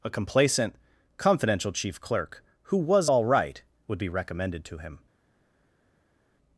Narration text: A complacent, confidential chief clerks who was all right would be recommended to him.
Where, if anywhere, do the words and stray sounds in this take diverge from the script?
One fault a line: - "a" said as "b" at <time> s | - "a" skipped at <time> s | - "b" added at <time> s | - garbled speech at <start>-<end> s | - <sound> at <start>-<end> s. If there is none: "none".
- "clerks" said as "clerk" at 2.0 s